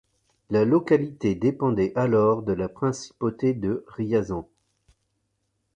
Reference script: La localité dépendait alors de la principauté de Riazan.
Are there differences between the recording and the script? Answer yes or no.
no